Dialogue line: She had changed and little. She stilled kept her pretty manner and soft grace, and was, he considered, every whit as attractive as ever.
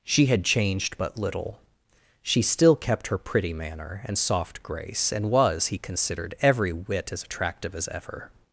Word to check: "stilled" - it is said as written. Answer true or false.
false